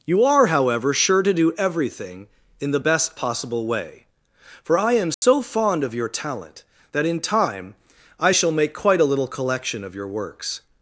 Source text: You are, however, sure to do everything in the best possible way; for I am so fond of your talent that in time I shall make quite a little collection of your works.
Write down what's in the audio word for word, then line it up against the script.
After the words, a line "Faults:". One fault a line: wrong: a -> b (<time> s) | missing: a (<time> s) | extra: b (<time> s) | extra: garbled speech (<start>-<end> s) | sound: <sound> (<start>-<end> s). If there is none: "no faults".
You are, however, sure to do everything in the best possible way; for I am so fond of your talent that in time I shall make quite a little collection of your works.
Faults:
sound: dropout (5.1-5.2 s)